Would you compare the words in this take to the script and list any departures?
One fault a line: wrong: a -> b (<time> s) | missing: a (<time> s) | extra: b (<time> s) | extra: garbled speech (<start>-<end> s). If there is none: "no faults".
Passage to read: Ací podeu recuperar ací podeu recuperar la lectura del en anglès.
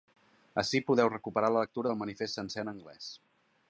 missing: ací podeu recuperar (1.5 s)
extra: manifest sencer (2.0 s)